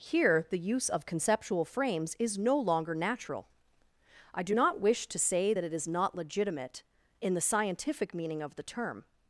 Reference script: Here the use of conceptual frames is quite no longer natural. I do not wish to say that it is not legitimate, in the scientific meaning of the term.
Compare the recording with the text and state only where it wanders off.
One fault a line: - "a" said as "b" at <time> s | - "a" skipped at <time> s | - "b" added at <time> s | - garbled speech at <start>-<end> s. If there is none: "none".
- "quite" skipped at 2.4 s